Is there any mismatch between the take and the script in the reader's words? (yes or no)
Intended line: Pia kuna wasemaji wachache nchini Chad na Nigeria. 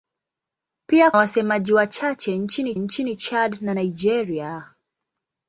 yes